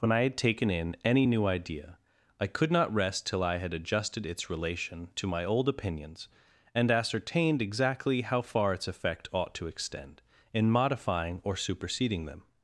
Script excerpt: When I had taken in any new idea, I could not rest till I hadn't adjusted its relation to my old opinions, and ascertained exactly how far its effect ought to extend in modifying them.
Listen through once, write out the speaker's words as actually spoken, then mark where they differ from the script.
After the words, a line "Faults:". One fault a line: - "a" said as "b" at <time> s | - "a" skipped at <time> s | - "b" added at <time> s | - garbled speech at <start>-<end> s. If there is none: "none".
When I had taken in any new idea, I could not rest till I had adjusted its relation to my old opinions, and ascertained exactly how far its effect ought to extend in modifying or superseding them.
Faults:
- "hadn't" said as "had" at 3.6 s
- "or superseding" added at 11.4 s